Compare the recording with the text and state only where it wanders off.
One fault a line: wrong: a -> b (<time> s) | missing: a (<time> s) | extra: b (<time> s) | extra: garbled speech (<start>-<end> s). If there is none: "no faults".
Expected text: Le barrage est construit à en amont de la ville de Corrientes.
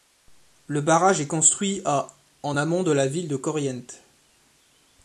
no faults